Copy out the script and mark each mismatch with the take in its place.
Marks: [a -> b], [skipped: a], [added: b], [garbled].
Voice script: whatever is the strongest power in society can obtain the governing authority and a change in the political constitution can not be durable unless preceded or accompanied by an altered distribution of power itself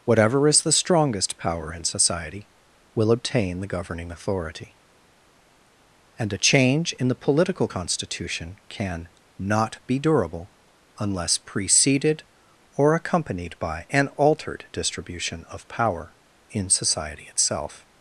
whatever is the strongest power in society [can -> will] obtain the governing authority and a change in the political constitution can not be durable unless preceded or accompanied by an altered distribution of power [added: in society] itself